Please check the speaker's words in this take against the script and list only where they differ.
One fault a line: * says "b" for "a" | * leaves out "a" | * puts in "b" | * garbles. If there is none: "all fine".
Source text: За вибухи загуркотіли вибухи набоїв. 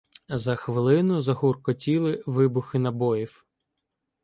* says "хвилину" for "вибухи"